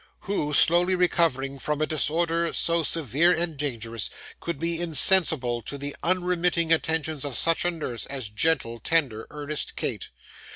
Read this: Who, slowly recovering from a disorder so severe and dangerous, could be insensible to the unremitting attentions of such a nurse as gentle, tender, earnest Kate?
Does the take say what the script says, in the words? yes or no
yes